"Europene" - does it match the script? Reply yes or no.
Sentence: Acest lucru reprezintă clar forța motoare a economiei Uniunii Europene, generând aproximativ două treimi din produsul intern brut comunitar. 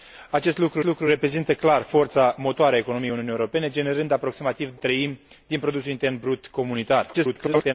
yes